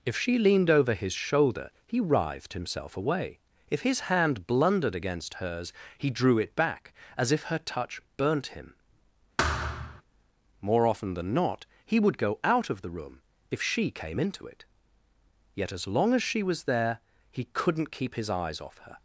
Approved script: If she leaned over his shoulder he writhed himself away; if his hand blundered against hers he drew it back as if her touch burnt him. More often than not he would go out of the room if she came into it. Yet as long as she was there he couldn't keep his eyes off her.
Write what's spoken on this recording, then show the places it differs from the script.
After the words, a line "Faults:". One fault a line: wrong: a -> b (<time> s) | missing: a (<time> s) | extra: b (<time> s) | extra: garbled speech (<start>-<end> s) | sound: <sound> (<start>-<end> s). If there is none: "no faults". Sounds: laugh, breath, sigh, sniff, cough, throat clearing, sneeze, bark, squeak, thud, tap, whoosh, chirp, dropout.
If she leaned over his shoulder he writhed himself away; if his hand blundered against hers he drew it back as if her touch burnt him. More often than not he would go out of the room if she came into it. Yet as long as she was there he couldn't keep his eyes off her.
Faults:
sound: thud (9.4-10.0 s)